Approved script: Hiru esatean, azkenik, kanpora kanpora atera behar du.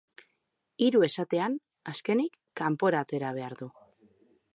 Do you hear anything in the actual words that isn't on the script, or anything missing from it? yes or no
yes